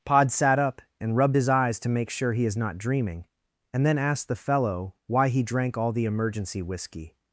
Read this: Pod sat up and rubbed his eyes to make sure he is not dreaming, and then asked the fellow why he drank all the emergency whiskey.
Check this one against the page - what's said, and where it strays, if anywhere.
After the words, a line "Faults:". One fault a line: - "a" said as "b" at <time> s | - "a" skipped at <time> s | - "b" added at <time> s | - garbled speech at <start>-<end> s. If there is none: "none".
Pod sat up and rubbed his eyes to make sure he is not dreaming, and then asked the fellow why he drank all the emergency whiskey.
Faults:
none